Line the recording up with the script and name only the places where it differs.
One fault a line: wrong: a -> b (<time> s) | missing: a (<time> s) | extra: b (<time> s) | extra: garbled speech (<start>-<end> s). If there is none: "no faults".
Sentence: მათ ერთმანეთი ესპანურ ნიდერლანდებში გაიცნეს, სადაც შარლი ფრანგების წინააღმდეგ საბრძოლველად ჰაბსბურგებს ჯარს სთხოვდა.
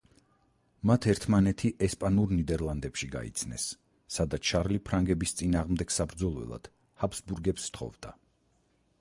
missing: ჯარს (7.7 s)